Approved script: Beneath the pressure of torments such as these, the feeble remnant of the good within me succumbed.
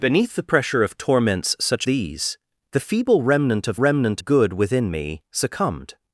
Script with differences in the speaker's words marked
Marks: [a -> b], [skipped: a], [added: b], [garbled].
Beneath the pressure of torments such [skipped: as] these, the feeble remnant of [the -> remnant] good within me succumbed.